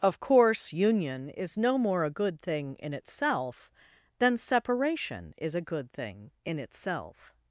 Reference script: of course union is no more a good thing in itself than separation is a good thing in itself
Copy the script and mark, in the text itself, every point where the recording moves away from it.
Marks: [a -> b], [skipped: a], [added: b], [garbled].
of course union is no more a good thing in itself than separation is a good thing in itself